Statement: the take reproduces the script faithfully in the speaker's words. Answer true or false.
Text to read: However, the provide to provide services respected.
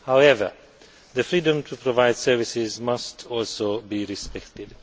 false